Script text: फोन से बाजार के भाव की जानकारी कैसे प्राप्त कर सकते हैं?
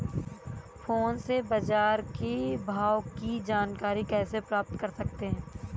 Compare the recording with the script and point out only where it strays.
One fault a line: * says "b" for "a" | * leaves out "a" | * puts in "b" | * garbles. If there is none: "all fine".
all fine